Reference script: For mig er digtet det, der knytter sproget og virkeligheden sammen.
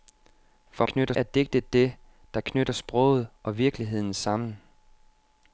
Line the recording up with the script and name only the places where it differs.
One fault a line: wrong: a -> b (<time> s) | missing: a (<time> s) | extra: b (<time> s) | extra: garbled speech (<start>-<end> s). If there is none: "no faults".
wrong: mig -> knytter (0.8 s)